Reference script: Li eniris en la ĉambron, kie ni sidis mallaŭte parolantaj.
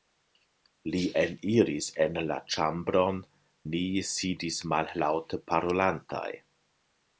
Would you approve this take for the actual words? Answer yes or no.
no